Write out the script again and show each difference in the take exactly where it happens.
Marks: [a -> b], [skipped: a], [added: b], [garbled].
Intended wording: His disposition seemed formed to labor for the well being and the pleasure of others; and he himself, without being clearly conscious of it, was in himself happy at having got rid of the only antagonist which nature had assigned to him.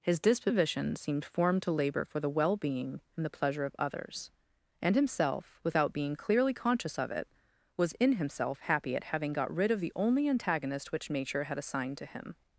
His disposition seemed formed to labor for the well being and the pleasure of others; and [skipped: he] himself, without being clearly conscious of it, was in himself happy at having got rid of the only antagonist which nature had assigned to him.